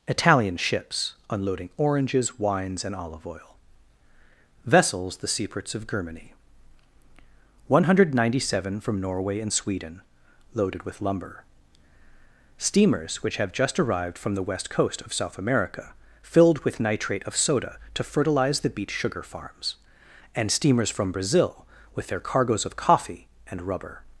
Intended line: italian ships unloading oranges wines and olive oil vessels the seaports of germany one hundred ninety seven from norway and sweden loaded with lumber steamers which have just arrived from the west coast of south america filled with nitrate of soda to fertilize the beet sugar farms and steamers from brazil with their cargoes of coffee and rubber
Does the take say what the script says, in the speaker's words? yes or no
yes